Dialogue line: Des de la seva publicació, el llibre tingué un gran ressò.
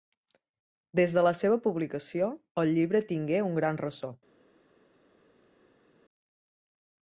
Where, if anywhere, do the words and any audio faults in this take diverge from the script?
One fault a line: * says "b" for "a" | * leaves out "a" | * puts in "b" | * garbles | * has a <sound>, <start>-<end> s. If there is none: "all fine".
all fine